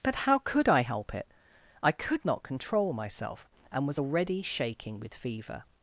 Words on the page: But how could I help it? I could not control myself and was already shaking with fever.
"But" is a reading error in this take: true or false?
false